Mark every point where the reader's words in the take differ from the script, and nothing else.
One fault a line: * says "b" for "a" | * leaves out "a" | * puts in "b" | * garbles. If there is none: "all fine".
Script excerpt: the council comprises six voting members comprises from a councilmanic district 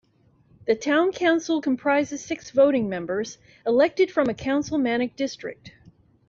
* puts in "town"
* says "elected" for "comprises"